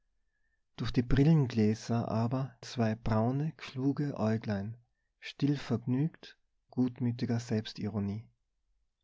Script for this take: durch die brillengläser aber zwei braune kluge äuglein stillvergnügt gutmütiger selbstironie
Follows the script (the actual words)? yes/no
yes